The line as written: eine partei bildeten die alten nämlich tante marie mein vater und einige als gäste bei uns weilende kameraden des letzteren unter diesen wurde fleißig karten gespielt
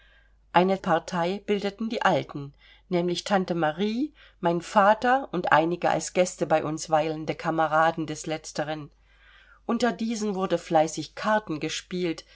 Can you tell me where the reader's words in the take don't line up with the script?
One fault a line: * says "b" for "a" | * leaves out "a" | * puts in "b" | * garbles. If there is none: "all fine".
all fine